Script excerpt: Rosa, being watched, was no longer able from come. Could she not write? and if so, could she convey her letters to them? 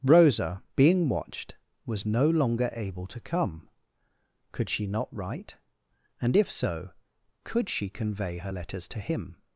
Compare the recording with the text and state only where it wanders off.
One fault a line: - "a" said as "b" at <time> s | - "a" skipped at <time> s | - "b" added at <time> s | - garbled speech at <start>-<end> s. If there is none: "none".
- "from" said as "to" at 3.0 s
- "them" said as "him" at 9.0 s